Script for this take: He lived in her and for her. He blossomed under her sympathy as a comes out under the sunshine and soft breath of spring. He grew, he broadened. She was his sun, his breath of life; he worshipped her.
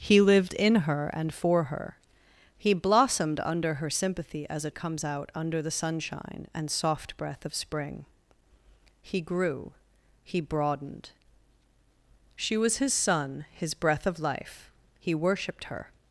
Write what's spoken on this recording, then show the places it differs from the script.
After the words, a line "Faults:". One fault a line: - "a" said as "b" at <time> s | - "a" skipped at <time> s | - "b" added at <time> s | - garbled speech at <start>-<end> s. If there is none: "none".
He lived in her and for her. He blossomed under her sympathy as a comes out under the sunshine and soft breath of spring. He grew, he broadened. She was his sun, his breath of life; he worshipped her.
Faults:
none